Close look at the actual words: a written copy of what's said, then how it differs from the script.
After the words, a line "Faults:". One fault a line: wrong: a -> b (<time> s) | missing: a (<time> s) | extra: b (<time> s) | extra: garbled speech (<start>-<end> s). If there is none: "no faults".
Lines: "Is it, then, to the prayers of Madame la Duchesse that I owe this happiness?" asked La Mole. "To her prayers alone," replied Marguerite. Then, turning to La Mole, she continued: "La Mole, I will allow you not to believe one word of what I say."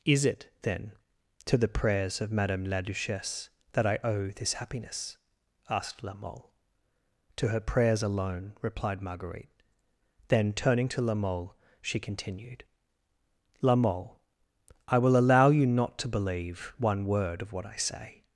"Is it, then, to the prayers of Madame la Duchesse that I owe this happiness?" asked La Mole. "To her prayers alone," replied Marguerite. Then, turning to La Mole, she continued: "La Mole, I will allow you not to believe one word of what I say."
Faults:
no faults